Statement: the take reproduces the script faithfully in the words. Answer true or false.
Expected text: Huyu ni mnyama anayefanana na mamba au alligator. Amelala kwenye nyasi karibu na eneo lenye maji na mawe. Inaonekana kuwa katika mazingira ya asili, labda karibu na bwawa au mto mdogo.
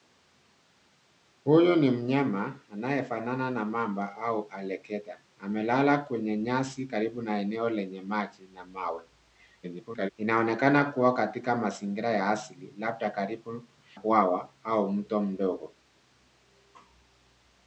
false